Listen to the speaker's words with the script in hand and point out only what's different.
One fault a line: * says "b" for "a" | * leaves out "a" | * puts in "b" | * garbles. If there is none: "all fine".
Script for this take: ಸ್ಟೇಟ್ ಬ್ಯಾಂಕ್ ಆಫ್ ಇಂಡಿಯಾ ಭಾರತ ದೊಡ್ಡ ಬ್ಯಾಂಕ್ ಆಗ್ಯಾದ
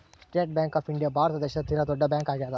* puts in "ದೇಶದ ತೀರ"